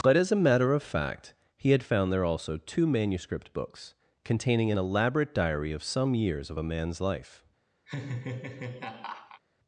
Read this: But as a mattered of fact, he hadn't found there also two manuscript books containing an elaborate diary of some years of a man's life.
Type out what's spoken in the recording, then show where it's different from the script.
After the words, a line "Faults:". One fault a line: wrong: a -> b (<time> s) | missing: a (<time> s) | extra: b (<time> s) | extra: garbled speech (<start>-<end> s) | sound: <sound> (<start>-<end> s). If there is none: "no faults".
But as a matter of fact, he had found there also two manuscript books containing an elaborate diary of some years of a man's life.
Faults:
wrong: mattered -> matter (0.3 s)
wrong: hadn't -> had (1.7 s)
sound: laugh (7.9-9.4 s)